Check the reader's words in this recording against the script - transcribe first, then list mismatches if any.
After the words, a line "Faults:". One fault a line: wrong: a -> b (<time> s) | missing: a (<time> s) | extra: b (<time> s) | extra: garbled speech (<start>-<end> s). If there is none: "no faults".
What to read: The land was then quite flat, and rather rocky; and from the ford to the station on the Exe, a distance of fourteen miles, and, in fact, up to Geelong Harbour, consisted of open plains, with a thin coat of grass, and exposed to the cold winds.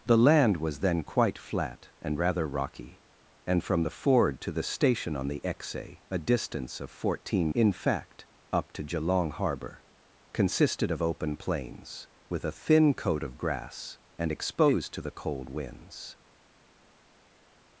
The land was then quite flat, and rather rocky; and from the ford to the station on the Exe, a distance of fourteen in fact, up to Geelong Harbour, consisted of open plains, with a thin coat of grass, and exposed to the cold winds.
Faults:
missing: miles and (7.5 s)